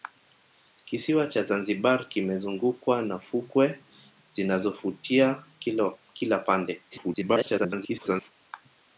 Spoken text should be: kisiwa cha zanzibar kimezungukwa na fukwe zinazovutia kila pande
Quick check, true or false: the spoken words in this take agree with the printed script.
false